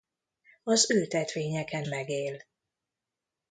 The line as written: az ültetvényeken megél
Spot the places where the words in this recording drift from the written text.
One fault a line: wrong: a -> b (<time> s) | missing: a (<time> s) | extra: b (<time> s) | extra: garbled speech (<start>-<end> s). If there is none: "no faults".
no faults